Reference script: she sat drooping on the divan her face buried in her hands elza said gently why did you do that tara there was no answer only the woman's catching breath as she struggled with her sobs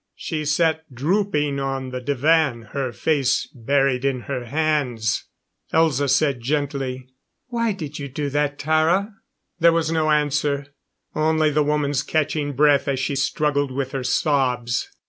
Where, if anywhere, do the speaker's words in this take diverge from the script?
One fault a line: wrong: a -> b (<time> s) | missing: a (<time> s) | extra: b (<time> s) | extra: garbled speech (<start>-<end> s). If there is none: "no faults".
no faults